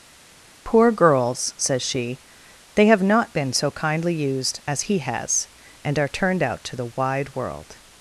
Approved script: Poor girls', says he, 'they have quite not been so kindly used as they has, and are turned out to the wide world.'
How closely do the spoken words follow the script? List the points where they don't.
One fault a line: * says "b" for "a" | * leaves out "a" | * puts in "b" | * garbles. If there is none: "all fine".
* says "she" for "he"
* leaves out "quite"
* says "he" for "they"